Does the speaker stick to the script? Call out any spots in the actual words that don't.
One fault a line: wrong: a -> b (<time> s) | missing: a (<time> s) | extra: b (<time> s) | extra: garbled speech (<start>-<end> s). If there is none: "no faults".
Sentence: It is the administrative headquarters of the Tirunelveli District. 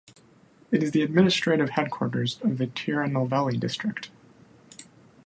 no faults